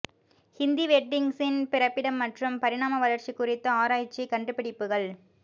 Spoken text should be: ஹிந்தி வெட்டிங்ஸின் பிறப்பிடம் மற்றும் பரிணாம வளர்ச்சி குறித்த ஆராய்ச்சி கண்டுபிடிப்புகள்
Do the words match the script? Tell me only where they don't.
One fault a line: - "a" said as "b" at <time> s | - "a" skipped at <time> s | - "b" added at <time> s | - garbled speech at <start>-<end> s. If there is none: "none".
none